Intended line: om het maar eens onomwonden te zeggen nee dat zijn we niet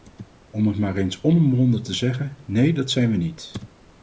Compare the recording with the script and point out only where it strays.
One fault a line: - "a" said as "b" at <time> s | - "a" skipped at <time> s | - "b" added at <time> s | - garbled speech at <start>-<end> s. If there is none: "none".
none